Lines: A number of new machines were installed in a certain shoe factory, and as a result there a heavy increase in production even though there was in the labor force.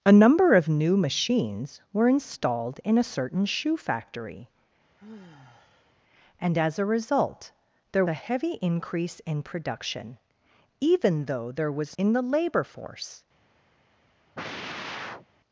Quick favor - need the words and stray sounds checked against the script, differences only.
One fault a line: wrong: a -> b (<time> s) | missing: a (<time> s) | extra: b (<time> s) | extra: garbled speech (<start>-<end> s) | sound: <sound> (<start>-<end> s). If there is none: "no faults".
sound: sigh (5.0-5.9 s)
sound: sigh (14.3-15.3 s)